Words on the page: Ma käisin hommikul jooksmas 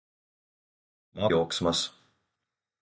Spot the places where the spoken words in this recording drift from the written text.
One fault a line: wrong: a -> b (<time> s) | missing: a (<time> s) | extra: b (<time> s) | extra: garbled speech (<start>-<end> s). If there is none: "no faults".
missing: käisin hommikul (1.3 s)